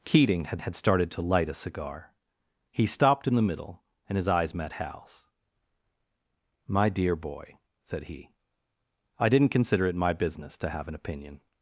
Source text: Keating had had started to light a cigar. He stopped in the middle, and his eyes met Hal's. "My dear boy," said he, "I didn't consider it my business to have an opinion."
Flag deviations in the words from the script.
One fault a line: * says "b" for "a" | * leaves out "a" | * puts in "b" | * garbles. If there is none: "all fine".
all fine